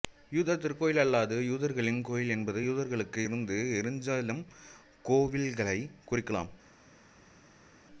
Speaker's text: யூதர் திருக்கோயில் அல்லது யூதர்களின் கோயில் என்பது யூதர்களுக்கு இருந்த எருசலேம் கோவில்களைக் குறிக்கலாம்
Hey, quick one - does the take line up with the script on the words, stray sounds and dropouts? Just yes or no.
yes